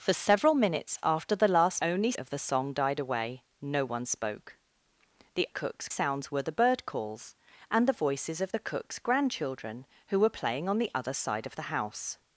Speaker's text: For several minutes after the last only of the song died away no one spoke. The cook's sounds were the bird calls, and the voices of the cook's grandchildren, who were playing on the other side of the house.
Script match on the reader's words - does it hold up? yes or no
yes